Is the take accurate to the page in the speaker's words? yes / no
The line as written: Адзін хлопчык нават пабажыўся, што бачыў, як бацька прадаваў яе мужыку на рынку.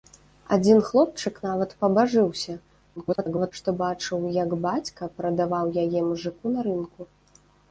no